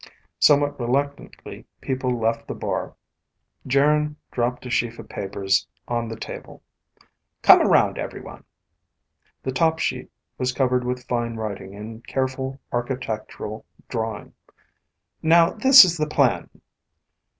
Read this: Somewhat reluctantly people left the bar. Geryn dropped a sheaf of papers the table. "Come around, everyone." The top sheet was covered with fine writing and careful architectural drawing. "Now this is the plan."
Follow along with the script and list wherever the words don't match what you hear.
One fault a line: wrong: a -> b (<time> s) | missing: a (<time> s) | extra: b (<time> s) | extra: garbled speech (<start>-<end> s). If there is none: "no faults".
extra: on (5.9 s)